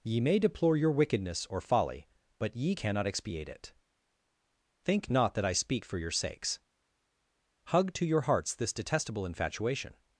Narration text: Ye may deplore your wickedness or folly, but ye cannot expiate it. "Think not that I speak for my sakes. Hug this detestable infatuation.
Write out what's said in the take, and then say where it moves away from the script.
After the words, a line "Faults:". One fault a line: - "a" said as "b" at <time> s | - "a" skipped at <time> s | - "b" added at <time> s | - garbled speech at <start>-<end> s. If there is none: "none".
Ye may deplore your wickedness or folly, but ye cannot expiate it. "Think not that I speak for your sakes. Hug to your hearts this detestable infatuation.
Faults:
- "my" said as "your" at 6.0 s
- "to your hearts" added at 7.9 s